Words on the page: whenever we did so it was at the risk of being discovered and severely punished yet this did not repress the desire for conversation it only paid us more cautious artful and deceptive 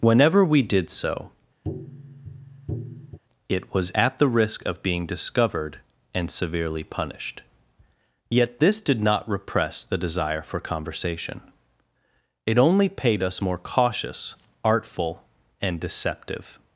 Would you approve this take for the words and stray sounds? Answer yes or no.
no